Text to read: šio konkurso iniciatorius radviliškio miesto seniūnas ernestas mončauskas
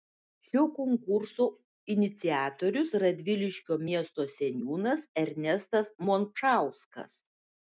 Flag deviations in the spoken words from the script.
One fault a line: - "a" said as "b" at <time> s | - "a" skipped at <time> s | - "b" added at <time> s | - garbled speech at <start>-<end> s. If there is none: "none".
none